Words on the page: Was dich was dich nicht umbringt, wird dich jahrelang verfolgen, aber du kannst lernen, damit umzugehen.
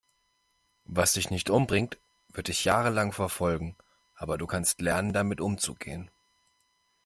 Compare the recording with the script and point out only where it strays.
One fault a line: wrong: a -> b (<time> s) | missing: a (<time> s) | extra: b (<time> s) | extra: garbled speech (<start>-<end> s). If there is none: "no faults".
missing: was dich (1.3 s)